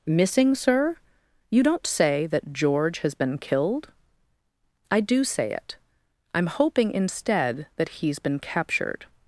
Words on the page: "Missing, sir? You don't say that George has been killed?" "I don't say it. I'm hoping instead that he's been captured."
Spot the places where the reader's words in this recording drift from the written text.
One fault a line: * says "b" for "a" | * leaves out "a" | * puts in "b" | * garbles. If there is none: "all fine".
* says "do" for "don't"